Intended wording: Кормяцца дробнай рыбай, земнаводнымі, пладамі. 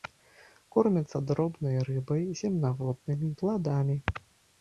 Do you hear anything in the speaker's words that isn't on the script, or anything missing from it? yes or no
no